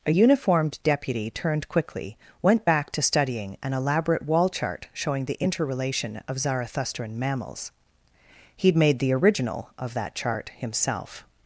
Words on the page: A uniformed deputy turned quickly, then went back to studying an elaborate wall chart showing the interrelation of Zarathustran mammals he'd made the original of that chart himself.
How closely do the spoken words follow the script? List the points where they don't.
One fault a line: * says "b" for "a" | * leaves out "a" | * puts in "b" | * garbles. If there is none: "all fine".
* leaves out "then"